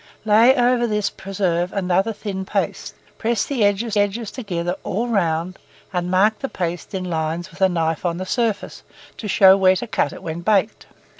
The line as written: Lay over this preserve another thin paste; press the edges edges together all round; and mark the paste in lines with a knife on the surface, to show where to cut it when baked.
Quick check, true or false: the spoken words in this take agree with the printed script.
true